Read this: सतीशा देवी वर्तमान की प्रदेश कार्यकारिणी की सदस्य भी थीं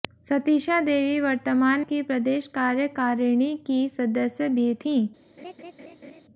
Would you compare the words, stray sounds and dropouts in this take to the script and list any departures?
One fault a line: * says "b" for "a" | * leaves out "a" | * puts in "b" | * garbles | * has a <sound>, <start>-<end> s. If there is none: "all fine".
* has a laugh, 5.4-6.2 s